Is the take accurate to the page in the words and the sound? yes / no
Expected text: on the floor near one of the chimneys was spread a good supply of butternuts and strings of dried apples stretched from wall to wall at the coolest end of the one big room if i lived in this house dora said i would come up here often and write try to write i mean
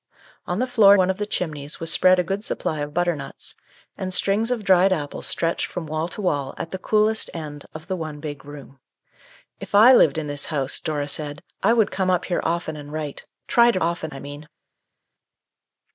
no